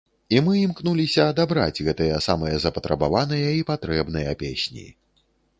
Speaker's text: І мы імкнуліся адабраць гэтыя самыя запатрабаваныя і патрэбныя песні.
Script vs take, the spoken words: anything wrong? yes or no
no